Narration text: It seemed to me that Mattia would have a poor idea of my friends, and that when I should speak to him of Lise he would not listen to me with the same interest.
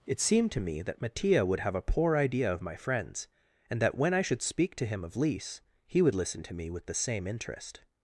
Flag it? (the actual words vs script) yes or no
yes